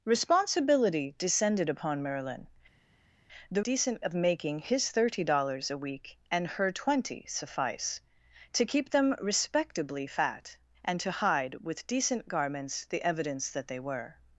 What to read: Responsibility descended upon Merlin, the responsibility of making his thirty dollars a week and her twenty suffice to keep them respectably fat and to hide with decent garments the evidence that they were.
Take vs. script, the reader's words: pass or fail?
fail